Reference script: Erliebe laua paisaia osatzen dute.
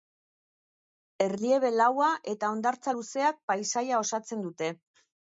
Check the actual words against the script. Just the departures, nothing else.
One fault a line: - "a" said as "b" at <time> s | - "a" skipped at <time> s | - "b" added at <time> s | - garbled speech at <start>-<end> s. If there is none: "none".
- "eta hondartza luzeak" added at 2.3 s